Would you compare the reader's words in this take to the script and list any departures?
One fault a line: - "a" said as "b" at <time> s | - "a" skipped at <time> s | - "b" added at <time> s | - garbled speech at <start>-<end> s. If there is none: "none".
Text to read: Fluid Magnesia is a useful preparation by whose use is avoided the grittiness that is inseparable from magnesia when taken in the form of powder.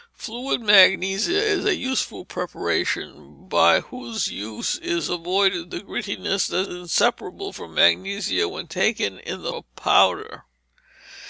- "is" skipped at 6.7 s
- "form" skipped at 9.5 s